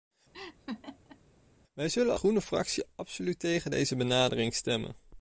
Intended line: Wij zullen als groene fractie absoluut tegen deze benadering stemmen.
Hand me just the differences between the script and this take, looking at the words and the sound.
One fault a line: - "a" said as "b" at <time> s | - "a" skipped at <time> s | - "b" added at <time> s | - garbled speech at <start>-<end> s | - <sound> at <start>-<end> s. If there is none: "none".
- laugh at 0.3-1.2 s
- "als" skipped at 2.1 s